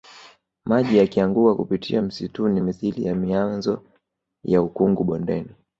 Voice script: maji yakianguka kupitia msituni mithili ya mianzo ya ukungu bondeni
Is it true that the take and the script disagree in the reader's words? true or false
false